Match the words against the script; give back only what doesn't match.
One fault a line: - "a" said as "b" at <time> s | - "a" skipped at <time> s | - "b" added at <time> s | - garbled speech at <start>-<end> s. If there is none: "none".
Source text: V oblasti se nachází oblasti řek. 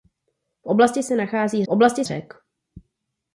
none